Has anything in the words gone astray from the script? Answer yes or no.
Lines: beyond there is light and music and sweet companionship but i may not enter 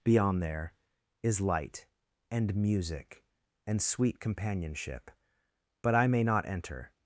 no